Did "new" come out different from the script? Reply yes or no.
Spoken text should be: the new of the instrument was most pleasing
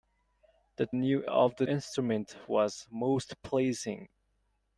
no